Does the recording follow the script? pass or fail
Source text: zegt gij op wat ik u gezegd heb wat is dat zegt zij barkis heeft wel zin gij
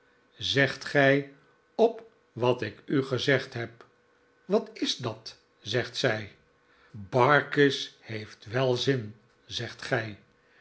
fail